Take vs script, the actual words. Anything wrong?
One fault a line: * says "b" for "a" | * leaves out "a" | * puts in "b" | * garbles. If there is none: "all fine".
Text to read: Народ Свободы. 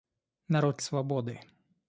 all fine